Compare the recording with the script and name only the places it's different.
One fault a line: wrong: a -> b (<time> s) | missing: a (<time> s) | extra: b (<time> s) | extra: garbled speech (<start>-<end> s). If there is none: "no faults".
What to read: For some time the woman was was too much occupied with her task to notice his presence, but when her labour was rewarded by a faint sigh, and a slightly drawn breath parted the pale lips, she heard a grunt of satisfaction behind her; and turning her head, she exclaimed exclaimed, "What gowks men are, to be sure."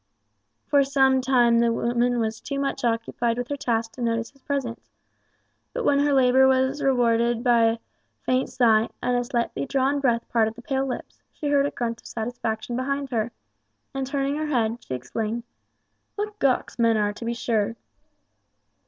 missing: was (2.4 s)
missing: exclaimed (15.4 s)